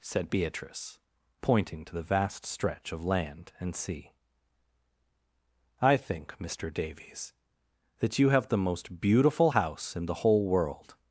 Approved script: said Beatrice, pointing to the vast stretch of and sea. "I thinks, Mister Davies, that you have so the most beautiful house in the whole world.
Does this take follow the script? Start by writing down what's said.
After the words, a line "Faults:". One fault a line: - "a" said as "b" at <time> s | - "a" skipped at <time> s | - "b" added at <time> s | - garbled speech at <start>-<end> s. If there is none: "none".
said Beatrice, pointing to the vast stretch of land and sea. "I think, Mister Davies, that you have the most beautiful house in the whole world.
Faults:
- "land" added at 3.0 s
- "thinks" said as "think" at 6.0 s
- "so" skipped at 8.5 s